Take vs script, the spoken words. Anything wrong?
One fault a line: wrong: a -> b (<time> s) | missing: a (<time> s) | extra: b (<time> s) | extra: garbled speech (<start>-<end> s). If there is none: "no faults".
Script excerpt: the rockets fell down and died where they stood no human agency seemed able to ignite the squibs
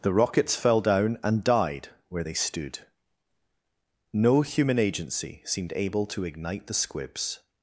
no faults